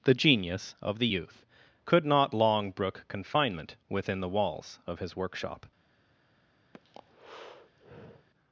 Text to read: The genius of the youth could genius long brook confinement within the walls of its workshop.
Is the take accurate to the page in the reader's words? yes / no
no